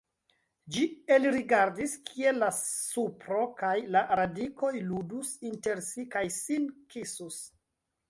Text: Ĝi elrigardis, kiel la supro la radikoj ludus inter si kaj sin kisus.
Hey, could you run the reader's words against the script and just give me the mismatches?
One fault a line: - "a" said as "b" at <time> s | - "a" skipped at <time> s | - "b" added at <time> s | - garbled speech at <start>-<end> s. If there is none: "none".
- "kaj" added at 3.6 s